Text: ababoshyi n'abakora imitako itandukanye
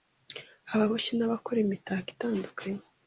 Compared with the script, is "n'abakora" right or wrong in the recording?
right